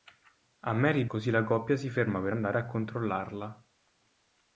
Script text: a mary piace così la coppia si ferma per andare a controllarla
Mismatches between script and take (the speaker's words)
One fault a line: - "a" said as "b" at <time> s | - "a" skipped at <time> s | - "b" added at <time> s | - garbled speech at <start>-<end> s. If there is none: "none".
- "piace" skipped at 1.1 s